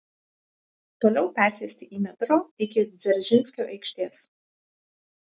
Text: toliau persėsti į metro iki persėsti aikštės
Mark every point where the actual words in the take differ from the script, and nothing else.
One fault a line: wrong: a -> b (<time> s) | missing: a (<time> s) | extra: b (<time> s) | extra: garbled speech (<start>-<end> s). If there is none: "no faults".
wrong: persėsti -> dzeržinskio (3.0 s)